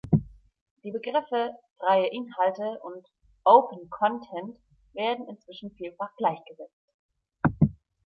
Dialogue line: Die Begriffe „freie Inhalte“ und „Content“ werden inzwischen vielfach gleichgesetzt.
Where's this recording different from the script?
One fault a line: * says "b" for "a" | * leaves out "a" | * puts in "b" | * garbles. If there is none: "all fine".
* puts in "Open"